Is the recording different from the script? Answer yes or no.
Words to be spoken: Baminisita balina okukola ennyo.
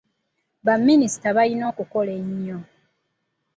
no